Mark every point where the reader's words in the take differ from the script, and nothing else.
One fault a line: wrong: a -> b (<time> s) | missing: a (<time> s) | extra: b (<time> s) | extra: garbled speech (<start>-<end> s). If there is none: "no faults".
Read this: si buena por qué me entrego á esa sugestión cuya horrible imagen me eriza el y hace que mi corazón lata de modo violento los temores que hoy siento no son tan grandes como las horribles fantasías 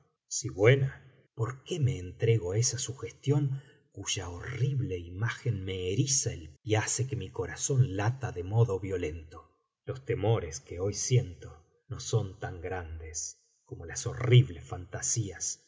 no faults